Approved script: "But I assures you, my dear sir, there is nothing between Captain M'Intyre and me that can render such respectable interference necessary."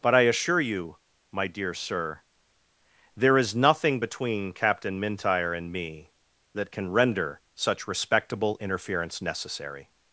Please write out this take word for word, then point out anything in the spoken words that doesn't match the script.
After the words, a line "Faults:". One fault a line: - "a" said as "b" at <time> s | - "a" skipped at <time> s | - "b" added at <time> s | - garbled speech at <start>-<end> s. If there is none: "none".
"But I assure you, my dear sir, there is nothing between Captain M'Intyre and me that can render such respectable interference necessary."
Faults:
- "assures" said as "assure" at 0.2 s